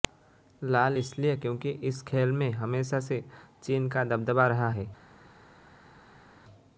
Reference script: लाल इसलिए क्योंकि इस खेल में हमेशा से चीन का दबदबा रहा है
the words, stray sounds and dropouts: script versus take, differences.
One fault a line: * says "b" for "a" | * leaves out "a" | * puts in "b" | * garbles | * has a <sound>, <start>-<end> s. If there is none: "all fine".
all fine